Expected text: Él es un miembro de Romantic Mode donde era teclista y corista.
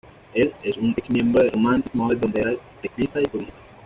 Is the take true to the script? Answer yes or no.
no